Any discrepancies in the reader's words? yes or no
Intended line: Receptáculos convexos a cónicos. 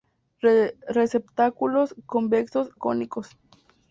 yes